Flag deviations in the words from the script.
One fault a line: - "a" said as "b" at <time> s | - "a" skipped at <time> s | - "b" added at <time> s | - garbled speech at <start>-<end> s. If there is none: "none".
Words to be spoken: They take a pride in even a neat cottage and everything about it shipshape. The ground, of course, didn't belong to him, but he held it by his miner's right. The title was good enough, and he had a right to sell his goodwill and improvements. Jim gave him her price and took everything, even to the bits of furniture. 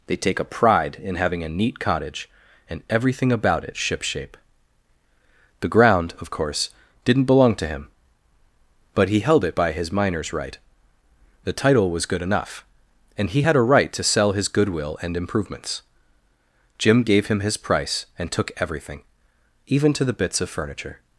- "even" said as "having" at 1.1 s
- "her" said as "his" at 17.4 s